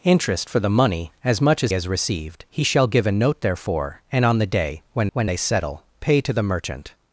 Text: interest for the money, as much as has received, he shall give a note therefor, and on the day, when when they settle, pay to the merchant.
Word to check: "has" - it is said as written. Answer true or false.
true